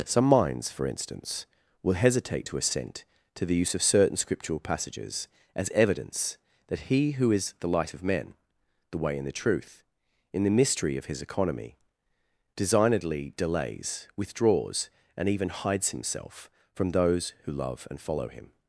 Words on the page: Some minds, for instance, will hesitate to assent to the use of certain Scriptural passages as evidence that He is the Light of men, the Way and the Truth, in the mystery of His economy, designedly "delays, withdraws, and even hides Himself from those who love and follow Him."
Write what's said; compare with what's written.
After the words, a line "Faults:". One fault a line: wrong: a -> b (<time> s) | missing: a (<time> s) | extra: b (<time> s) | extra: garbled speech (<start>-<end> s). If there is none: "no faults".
Some minds, for instance, will hesitate to assent to the use of certain Scriptural passages as evidence that He who is the Light of men, the Way and the Truth, in the mystery of His economy, designedly "delays, withdraws, and even hides Himself from those who love and follow Him."
Faults:
extra: who (7.1 s)